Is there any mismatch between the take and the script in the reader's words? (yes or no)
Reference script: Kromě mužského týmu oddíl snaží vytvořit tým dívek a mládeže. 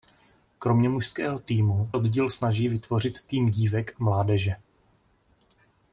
no